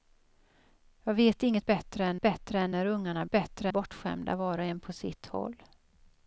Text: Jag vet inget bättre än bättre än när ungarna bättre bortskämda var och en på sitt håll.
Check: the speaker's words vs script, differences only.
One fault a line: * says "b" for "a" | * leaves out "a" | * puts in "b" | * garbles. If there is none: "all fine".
all fine